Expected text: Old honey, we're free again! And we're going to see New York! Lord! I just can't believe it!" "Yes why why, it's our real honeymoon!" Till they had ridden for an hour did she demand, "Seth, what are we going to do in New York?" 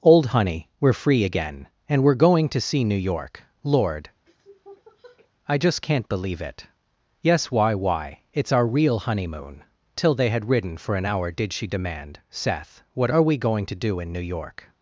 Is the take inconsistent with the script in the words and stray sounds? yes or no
yes